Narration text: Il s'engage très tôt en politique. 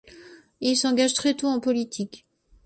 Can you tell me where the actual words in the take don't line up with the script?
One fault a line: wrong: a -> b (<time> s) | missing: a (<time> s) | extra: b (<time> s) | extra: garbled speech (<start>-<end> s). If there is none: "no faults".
no faults